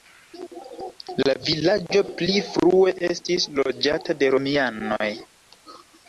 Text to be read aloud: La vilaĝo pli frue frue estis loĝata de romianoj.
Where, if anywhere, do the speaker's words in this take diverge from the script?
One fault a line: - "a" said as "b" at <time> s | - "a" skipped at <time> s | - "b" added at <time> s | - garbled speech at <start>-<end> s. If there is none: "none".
- "frue" skipped at 2.9 s